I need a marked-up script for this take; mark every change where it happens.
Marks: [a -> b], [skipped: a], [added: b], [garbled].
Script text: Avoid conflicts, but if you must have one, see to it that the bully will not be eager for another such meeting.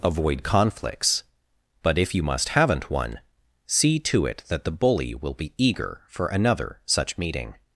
Avoid conflicts, but if you must [have -> haven't] one, see to it that the bully will [skipped: not] be eager for another such meeting.